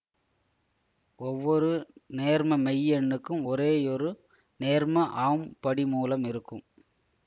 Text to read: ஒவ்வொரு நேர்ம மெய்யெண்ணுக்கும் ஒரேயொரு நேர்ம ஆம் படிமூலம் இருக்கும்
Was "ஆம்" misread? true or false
false